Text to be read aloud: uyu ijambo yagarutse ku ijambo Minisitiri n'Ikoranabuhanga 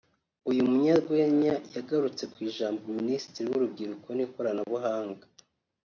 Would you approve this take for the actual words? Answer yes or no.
no